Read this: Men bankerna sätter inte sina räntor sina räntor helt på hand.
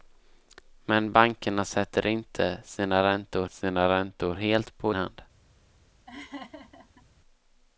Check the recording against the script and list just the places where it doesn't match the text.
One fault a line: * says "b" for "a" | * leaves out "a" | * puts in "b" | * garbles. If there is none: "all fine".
all fine